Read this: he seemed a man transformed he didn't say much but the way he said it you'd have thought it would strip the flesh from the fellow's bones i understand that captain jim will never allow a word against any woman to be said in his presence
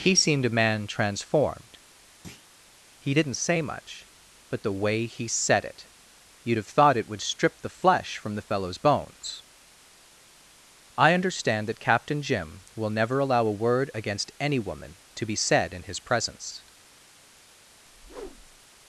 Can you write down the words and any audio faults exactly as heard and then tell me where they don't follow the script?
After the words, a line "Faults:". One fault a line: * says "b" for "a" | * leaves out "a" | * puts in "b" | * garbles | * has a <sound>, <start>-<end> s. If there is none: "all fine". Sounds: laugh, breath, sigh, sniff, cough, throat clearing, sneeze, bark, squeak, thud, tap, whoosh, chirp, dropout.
he seemed a man transformed he didn't say much but the way he said it you'd have thought it would strip the flesh from the fellow's bones i understand that captain jim will never allow a word against any woman to be said in his presence
Faults:
* has a thud, 2.2-2.5 s
* has a whoosh, 17.8-18.7 s